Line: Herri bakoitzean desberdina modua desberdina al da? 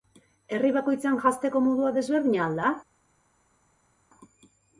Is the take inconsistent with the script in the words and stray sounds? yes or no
yes